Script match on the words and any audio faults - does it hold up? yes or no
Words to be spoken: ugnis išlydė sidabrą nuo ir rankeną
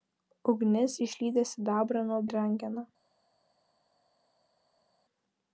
yes